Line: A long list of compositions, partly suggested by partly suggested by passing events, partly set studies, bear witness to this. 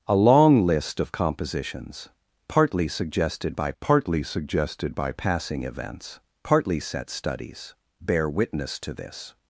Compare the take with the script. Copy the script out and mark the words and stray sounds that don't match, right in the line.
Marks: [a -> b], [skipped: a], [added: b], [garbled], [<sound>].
A long list of compositions, partly suggested by partly suggested by passing events, partly set studies, bear witness to this.